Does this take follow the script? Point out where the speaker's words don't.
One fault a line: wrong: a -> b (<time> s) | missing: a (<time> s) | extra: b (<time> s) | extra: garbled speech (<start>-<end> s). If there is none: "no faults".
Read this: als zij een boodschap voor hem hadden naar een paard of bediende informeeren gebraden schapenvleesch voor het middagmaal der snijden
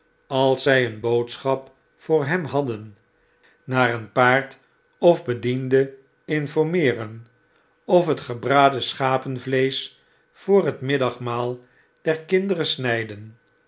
extra: of het (7.8 s)
extra: kinderen (12.2 s)